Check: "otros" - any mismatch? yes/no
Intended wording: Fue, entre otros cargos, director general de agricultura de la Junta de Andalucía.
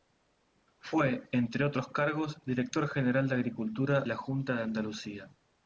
no